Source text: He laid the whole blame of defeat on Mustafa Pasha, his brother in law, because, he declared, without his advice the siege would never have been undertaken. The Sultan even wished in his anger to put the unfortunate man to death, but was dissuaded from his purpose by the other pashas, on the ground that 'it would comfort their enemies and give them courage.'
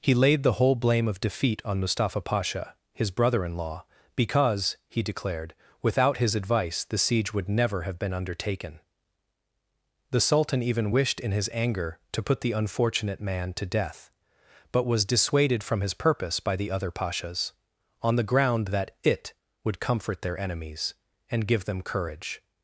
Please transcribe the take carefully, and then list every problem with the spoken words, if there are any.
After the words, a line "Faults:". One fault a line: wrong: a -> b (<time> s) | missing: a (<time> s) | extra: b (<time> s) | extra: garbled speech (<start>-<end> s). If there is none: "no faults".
He laid the whole blame of defeat on Mustafa Pasha, his brother in law, because, he declared, without his advice the siege would never have been undertaken. The Sultan even wished in his anger to put the unfortunate man to death, but was dissuaded from his purpose by the other pashas, on the ground that 'it would comfort their enemies and give them courage.'
Faults:
no faults